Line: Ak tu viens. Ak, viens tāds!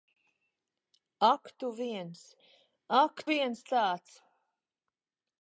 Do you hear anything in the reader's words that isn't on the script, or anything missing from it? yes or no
no